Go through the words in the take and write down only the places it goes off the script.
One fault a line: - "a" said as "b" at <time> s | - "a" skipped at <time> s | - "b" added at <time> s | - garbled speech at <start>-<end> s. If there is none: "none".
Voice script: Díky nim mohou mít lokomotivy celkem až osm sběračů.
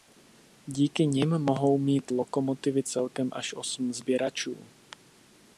none